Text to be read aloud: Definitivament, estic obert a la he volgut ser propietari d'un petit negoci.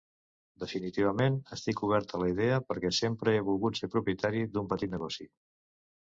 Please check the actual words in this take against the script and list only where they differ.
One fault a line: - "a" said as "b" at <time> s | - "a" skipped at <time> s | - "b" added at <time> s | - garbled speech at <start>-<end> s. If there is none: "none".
- "idea perquè sempre" added at 2.3 s